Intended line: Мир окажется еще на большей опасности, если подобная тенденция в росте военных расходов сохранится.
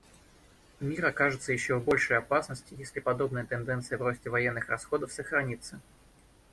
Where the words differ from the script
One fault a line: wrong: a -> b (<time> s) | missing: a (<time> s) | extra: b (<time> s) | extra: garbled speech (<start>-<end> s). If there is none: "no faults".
wrong: на -> в (1.8 s)